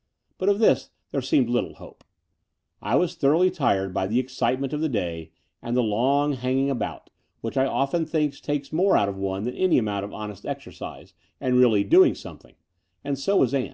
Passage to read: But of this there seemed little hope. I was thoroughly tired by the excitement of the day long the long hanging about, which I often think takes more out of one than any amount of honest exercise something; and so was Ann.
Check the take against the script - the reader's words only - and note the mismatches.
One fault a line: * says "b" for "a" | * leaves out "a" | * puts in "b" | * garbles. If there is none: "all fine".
* says "and" for "long"
* puts in "and really doing"